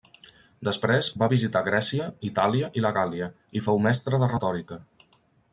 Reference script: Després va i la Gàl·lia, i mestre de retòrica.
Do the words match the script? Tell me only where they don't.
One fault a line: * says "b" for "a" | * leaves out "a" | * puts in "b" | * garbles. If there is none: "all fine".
* puts in "visitar Grècia Itàlia"
* puts in "fou"